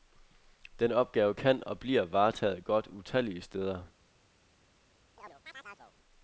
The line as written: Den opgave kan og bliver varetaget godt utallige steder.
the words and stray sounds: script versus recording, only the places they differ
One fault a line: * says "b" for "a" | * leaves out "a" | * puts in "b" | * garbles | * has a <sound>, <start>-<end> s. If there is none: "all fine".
* has a chirp, 5.2-5.9 s